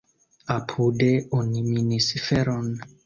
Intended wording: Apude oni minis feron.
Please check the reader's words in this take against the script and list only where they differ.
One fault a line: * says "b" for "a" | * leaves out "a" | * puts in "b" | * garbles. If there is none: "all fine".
all fine